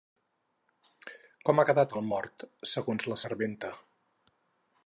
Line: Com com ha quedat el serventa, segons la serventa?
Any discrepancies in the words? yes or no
yes